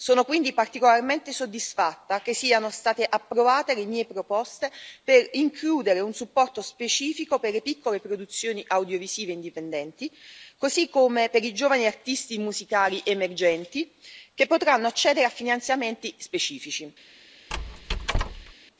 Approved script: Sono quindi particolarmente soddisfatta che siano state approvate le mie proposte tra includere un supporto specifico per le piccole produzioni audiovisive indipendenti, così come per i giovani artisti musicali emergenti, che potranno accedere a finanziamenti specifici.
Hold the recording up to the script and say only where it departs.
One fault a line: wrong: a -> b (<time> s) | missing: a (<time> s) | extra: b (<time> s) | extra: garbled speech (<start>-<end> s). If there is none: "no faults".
wrong: tra -> per (5.0 s)